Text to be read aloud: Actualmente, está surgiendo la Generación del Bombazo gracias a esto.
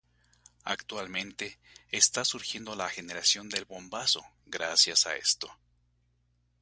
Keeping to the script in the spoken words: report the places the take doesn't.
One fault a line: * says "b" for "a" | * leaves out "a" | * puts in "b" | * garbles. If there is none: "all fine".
all fine